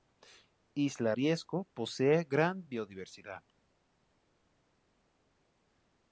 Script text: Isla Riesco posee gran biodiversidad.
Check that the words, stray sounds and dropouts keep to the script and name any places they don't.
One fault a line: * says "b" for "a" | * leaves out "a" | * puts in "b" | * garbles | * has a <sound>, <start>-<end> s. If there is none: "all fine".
all fine